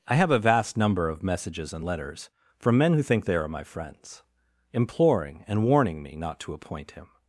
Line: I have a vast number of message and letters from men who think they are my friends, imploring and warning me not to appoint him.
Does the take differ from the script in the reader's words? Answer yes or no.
yes